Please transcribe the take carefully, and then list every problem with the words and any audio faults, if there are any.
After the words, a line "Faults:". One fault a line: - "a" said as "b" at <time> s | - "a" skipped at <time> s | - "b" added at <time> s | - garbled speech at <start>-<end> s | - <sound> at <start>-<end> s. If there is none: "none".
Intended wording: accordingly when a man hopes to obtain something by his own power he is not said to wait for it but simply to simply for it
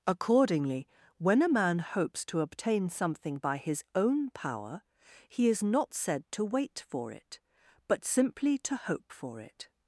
accordingly when a man hopes to obtain something by his own power he is not said to wait for it but simply to hope for it
Faults:
- "simply" said as "hope" at 8.8 s